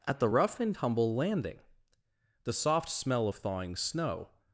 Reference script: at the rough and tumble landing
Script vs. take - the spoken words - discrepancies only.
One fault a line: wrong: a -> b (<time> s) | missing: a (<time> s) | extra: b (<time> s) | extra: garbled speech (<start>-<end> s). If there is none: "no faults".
extra: the soft smell of thawing snow (2.4 s)